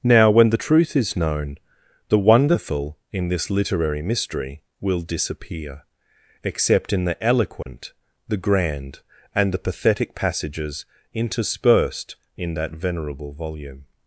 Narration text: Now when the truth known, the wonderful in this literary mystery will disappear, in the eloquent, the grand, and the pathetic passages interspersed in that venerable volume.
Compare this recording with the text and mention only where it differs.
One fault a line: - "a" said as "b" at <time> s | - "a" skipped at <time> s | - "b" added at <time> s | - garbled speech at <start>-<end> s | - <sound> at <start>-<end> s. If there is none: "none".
- "is" added at 0.9 s
- "except" added at 6.4 s
- dropout at 7.6-7.7 s